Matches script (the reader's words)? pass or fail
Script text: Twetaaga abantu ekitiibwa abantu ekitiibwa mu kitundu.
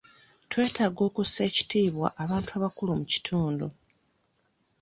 fail